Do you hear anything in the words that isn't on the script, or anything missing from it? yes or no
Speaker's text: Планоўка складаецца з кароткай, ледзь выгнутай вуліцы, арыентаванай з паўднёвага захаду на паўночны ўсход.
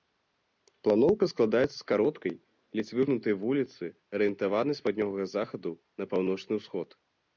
no